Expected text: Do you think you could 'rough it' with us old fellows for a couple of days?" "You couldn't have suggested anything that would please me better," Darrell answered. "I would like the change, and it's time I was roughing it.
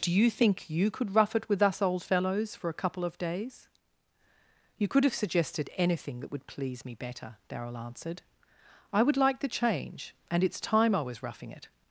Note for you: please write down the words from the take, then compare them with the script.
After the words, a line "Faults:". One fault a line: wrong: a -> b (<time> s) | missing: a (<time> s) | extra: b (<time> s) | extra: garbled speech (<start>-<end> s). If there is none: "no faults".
Do you think you could 'rough it' with us old fellows for a couple of days?" "You could have suggested anything that would please me better," Darrell answered. "I would like the change, and it's time I was roughing it.
Faults:
wrong: couldn't -> could (4.9 s)